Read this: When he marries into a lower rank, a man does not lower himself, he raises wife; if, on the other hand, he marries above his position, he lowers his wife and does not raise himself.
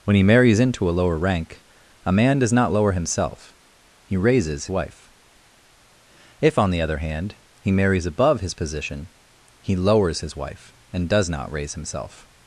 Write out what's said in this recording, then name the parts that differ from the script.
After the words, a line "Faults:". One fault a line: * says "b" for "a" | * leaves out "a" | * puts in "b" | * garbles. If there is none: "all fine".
When he marries into a lower rank, a man does not lower himself, he raises wife; if, on the other hand, he marries above his position, he lowers his wife and does not raise himself.
Faults:
all fine